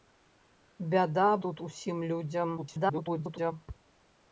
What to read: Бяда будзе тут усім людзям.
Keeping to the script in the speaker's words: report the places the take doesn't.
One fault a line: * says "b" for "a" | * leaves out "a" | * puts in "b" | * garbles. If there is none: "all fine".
* leaves out "будзе"
* garbles